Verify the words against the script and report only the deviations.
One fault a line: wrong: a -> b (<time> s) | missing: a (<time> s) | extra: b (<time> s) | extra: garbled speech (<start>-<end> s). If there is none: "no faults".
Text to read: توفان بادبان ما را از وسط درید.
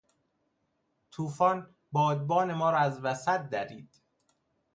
no faults